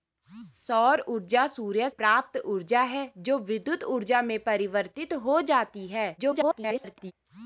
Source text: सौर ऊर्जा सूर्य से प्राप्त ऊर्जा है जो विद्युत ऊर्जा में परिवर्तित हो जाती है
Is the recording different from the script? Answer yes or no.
yes